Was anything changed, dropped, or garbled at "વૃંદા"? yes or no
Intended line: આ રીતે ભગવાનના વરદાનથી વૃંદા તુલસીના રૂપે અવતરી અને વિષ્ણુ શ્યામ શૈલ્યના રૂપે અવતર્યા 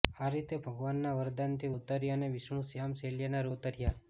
yes